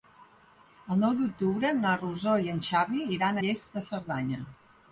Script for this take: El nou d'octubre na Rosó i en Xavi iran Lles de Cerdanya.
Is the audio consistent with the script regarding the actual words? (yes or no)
yes